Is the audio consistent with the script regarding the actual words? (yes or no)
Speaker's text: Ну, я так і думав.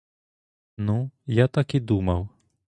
yes